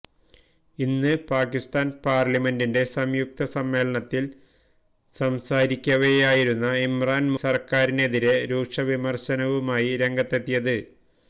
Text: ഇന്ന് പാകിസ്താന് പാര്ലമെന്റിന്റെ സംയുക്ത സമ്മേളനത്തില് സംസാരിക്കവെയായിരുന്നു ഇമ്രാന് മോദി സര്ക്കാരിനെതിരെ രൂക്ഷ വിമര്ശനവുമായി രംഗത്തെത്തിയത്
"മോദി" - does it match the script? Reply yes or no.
no